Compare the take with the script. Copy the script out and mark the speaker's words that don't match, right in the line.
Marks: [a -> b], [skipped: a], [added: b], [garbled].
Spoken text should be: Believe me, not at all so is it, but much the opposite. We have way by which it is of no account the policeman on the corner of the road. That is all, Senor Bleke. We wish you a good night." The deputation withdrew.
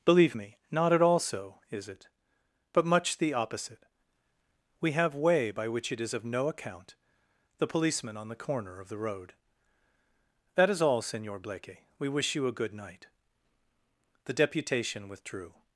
Believe me, not at all so is it, but much the opposite. We have way by which it is of no account the policeman on the corner of the road. That is all, Senor Bleke. We wish you a good night." The deputation withdrew.